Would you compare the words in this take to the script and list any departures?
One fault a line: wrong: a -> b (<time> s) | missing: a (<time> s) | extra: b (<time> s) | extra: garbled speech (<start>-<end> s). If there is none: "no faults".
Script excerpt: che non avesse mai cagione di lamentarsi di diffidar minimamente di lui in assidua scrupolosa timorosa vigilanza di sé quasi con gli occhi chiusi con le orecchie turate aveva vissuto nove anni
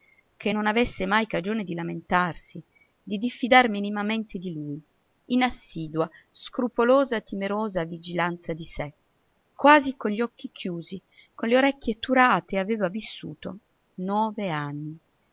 no faults